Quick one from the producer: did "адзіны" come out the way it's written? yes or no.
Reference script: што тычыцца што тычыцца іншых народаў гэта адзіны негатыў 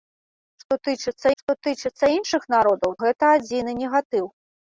yes